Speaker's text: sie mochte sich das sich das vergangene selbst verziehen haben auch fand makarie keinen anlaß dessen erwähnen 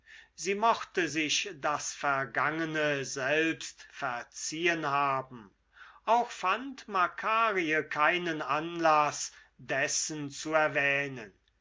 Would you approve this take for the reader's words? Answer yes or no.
no